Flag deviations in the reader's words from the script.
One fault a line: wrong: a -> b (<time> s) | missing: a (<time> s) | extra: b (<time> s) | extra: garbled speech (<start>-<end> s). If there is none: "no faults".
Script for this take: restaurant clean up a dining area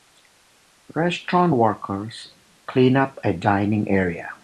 extra: workers (1.5 s)